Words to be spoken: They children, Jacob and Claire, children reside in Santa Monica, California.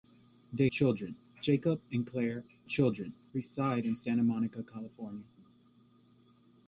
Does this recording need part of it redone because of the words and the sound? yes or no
no